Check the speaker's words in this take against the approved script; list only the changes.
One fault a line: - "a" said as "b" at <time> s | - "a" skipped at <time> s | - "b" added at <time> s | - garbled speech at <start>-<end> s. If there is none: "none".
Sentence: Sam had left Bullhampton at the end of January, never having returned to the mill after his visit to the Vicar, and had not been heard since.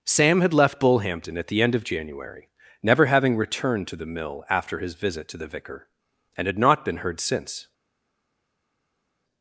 none